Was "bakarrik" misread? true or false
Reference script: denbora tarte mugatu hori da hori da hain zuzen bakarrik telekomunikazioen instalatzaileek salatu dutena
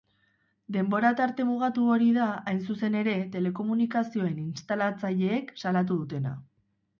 true